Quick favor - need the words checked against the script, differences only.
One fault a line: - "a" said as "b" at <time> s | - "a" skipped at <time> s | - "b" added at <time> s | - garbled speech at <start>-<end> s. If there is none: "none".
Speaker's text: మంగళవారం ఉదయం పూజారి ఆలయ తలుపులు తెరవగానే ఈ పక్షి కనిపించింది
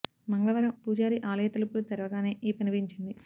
- "ఉదయం" skipped at 0.7 s
- "పక్షి" skipped at 2.5 s